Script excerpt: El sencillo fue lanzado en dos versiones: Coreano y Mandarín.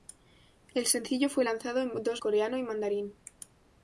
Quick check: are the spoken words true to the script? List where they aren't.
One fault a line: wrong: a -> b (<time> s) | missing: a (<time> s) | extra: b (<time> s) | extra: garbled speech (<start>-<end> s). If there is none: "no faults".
missing: versiones (2.2 s)